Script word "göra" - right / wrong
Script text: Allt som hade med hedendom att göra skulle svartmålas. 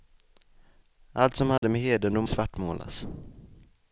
wrong